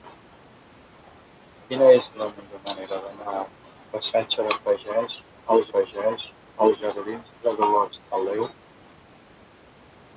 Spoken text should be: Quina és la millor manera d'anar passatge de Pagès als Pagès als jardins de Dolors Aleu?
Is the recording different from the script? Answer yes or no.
no